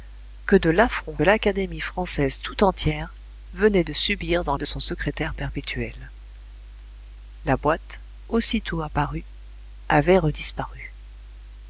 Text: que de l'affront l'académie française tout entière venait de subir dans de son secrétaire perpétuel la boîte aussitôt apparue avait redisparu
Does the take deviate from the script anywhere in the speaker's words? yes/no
no